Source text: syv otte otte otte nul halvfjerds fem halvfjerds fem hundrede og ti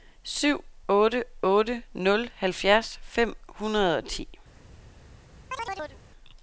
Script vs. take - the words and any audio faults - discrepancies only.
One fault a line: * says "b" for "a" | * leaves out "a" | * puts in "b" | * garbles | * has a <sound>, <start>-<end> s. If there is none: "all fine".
* leaves out "otte"
* leaves out "halvfjerds fem"
* has a chirp, 5.5-6.0 s